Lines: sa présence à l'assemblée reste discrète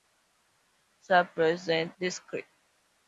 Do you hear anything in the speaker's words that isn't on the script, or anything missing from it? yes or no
yes